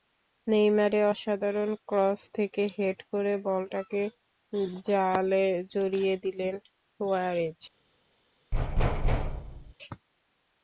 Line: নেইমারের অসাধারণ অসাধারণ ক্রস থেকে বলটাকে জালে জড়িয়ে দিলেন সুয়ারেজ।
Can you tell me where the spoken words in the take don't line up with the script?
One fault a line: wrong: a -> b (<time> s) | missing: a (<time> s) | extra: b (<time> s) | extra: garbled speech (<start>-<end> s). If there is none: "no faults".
missing: অসাধারণ (1.7 s)
extra: হেড করে (2.7 s)